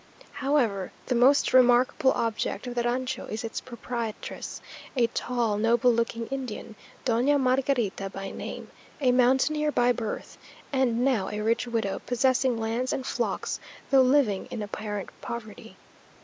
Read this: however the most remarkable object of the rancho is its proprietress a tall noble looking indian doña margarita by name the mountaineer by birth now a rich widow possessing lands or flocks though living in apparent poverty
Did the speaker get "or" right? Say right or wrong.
wrong